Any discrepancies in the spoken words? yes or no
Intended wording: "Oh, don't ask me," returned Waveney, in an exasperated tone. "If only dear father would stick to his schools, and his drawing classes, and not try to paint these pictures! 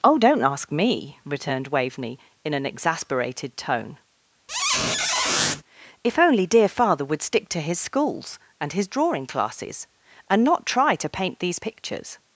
no